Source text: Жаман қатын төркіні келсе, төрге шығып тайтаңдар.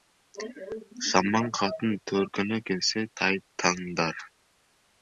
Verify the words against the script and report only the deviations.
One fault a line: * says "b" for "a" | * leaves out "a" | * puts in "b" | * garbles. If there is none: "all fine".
* leaves out "төрге шығып"